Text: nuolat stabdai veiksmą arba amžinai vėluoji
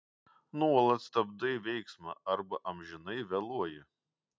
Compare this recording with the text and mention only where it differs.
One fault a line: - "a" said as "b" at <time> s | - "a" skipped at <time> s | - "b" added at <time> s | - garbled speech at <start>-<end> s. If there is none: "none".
none